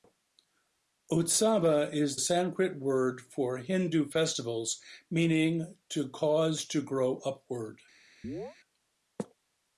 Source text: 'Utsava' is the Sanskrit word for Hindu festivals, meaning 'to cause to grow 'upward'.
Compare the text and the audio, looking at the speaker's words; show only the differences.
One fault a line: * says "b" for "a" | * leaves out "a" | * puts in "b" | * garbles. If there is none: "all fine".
* leaves out "the"